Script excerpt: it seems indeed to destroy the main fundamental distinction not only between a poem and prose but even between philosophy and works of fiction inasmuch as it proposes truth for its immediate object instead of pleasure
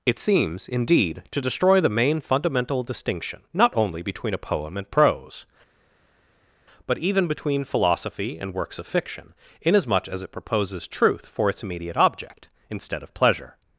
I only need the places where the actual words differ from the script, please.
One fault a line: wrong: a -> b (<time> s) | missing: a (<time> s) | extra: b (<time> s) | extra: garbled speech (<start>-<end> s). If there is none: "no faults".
no faults